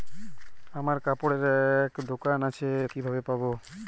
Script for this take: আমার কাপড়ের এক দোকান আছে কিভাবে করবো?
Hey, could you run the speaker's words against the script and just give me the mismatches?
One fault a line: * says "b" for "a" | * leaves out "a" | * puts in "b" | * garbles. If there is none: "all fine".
all fine